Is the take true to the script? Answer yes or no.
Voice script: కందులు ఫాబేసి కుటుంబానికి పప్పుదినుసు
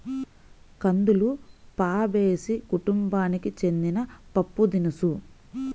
no